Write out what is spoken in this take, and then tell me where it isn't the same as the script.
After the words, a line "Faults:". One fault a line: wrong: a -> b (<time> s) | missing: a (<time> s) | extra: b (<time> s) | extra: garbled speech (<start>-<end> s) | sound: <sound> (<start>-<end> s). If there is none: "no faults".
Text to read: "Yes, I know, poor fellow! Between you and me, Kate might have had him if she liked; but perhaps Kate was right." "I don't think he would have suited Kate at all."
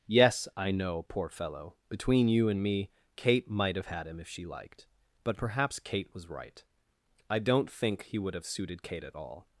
"Yes, I know, poor fellow! Between you and me, Kate might have had him if she liked; but perhaps Kate was right." "I don't think he would have suited Kate at all."
Faults:
no faults